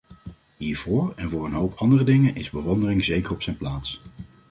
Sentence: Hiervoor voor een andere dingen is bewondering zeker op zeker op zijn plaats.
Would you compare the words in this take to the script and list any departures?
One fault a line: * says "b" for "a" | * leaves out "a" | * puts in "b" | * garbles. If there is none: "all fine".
* puts in "en"
* puts in "hoop"
* leaves out "zeker op"